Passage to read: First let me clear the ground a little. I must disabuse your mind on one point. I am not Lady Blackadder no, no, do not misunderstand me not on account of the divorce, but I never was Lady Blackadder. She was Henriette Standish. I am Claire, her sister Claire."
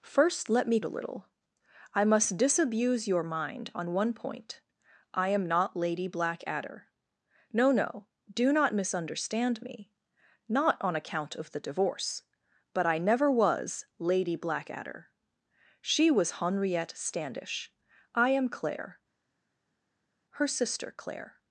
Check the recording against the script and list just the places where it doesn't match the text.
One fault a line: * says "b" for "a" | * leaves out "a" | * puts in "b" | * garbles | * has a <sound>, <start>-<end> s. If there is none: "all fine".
* leaves out "clear the ground"